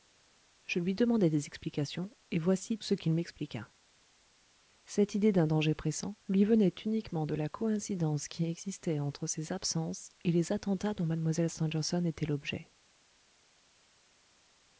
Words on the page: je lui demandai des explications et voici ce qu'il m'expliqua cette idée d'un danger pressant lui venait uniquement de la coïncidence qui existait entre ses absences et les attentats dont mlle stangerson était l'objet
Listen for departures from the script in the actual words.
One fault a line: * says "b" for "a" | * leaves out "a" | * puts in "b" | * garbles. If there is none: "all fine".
all fine